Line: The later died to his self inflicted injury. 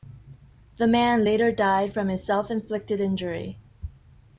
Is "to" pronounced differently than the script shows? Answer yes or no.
yes